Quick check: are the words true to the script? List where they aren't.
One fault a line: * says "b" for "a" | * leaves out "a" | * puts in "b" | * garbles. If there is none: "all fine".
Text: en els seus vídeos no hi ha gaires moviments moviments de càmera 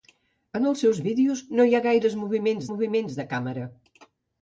all fine